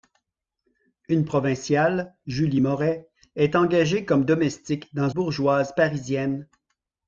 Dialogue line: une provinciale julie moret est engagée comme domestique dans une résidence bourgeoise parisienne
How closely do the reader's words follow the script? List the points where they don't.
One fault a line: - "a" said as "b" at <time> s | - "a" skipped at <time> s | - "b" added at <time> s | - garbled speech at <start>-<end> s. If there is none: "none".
- "une résidence" skipped at 5.1 s